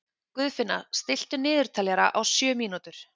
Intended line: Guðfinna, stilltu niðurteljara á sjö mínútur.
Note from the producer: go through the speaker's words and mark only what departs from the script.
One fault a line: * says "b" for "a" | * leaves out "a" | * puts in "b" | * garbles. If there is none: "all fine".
all fine